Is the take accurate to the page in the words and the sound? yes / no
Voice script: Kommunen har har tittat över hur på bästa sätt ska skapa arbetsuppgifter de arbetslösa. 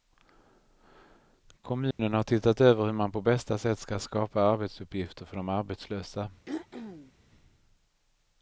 no